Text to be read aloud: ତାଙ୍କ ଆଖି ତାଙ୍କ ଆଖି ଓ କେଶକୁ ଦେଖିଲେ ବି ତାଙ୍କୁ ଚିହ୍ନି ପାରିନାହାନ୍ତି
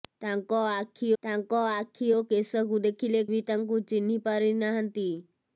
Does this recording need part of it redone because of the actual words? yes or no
no